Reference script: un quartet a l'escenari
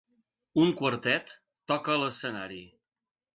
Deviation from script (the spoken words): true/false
true